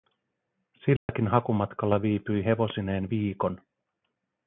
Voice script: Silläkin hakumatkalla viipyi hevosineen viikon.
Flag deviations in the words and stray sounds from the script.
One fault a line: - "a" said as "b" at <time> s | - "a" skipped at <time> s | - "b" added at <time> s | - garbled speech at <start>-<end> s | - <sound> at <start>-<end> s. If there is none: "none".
- dropout at 1.0-1.1 s